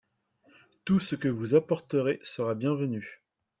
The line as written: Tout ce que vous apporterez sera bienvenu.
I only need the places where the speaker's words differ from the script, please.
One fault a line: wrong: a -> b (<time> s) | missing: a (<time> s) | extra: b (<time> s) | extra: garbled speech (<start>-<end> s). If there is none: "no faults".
no faults